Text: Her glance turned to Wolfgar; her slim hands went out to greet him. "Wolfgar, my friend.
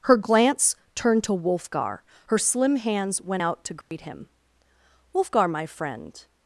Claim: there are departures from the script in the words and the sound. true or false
true